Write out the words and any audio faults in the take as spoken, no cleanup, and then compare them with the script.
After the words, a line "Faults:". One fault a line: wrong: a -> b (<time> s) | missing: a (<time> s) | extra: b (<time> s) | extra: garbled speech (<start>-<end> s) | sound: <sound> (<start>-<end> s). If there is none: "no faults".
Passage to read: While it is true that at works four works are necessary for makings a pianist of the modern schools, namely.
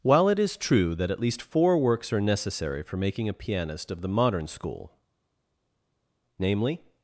While it is true that at least four works are necessary for making a pianist of the modern school, namely.
Faults:
wrong: works -> least (1.2 s)
wrong: makings -> making (3.0 s)
wrong: schools -> school (4.5 s)